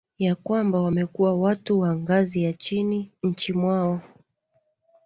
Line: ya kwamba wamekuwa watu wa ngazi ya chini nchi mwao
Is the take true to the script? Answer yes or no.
yes